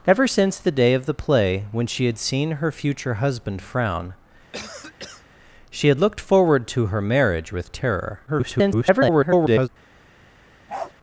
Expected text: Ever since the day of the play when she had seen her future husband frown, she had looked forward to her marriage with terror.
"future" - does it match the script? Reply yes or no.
yes